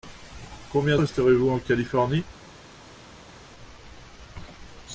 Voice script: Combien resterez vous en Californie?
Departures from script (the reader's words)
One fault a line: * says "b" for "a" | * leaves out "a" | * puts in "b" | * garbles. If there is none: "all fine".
all fine